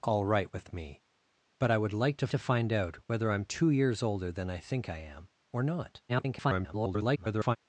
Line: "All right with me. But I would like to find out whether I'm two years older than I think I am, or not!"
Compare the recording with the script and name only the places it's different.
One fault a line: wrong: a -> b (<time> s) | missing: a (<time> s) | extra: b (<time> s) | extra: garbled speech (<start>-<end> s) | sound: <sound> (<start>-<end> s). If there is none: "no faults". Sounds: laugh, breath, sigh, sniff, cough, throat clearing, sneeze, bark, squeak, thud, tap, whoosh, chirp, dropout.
extra: to (2.3 s)
extra: garbled speech (6.1-7.6 s)